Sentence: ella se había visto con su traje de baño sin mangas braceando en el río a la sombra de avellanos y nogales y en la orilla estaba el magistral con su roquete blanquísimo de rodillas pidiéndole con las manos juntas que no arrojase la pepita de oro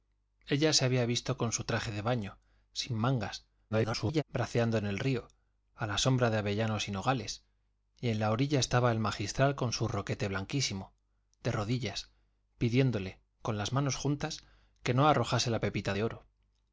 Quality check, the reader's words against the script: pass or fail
fail